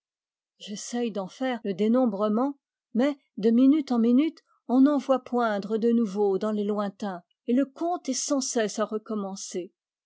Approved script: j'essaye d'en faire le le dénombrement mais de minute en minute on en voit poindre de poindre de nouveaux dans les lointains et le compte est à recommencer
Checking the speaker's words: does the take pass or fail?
fail